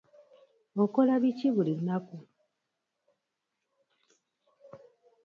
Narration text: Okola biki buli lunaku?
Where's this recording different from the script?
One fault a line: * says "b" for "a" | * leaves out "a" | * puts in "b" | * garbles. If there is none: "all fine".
all fine